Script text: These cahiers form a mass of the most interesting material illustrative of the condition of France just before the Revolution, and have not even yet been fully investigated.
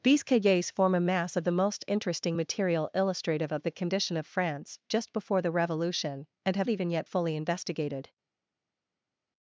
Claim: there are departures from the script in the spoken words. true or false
true